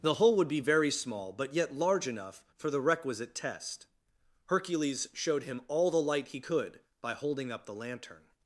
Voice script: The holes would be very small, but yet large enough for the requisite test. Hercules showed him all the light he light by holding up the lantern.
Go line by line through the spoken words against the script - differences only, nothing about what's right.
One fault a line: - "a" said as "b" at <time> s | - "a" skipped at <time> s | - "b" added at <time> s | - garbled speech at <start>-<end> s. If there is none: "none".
- "holes" said as "hole" at 0.1 s
- "light" said as "could" at 6.4 s